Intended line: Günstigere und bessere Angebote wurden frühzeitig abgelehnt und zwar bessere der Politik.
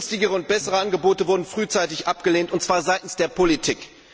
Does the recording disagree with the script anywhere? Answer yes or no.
yes